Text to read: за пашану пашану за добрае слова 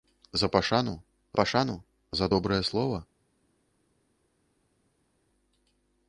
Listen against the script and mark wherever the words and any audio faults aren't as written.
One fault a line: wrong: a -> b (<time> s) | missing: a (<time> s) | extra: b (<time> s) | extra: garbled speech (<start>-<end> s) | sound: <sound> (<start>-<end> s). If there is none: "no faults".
no faults